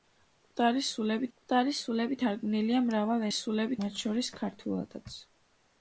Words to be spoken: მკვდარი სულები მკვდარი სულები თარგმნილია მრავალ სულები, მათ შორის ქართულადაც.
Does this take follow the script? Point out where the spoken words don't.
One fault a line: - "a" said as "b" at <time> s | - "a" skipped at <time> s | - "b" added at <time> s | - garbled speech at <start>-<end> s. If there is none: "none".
none